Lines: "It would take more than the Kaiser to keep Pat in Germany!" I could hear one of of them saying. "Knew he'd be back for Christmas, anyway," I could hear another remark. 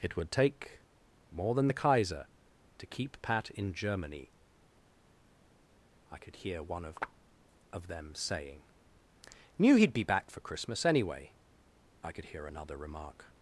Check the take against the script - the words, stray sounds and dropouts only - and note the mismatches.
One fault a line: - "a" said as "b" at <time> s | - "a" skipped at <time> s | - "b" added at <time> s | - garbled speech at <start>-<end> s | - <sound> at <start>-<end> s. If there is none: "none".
none